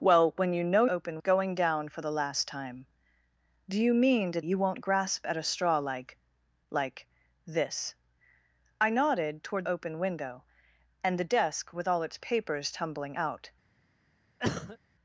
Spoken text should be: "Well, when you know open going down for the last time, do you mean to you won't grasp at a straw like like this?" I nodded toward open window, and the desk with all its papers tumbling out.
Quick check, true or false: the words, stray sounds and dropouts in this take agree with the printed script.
false